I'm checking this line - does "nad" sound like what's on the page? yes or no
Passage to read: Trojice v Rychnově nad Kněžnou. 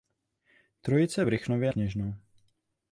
no